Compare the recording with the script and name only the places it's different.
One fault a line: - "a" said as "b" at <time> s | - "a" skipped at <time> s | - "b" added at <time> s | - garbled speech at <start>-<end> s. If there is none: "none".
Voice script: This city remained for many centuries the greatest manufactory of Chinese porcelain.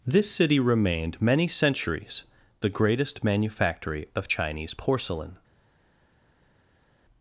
- "for" skipped at 1.2 s